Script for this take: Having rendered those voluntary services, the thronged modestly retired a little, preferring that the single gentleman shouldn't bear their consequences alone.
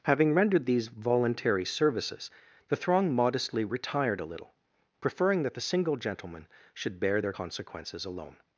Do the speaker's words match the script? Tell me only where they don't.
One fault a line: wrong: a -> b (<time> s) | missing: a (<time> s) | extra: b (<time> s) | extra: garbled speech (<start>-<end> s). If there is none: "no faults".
wrong: those -> these (0.7 s)
wrong: thronged -> throng (2.8 s)
wrong: shouldn't -> should (6.7 s)